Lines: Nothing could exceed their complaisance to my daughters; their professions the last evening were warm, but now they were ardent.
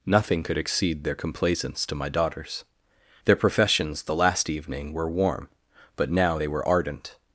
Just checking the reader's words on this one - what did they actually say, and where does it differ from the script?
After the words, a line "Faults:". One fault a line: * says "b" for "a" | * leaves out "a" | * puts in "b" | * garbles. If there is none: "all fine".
Nothing could exceed their complaisance to my daughters; their professions the last evening were warm, but now they were ardent.
Faults:
all fine